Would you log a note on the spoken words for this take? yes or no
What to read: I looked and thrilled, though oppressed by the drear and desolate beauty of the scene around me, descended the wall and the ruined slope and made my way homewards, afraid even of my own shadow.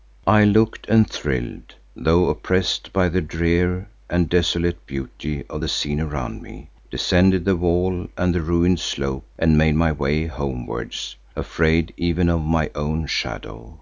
no